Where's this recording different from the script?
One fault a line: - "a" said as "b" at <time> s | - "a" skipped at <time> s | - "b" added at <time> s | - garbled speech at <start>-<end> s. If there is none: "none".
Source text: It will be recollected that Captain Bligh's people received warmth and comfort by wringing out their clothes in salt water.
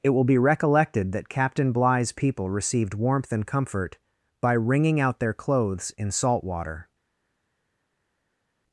none